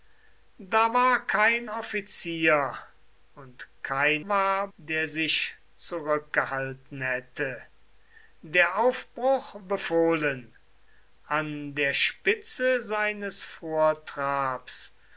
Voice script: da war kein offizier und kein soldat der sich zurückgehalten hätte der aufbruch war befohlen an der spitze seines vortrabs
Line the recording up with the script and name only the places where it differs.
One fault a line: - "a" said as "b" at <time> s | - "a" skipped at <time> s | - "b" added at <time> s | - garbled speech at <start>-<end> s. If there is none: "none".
- "soldat" said as "war" at 4.3 s
- "war" skipped at 9.5 s